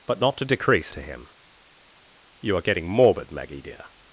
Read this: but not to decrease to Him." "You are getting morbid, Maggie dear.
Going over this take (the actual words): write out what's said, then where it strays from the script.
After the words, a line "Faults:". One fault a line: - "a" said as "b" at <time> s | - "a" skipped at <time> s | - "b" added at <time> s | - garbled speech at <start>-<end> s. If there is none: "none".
but not to decrease to Him." "You are getting morbid, Maggie dear.
Faults:
none